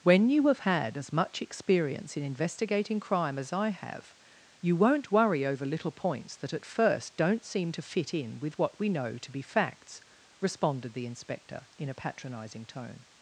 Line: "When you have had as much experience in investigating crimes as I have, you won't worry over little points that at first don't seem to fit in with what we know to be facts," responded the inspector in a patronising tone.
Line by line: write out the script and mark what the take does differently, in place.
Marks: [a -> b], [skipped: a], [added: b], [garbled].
"When you have had as much experience in investigating [crimes -> crime] as I have, you won't worry over little points that at first don't seem to fit in with what we know to be facts," responded the inspector in a patronising tone.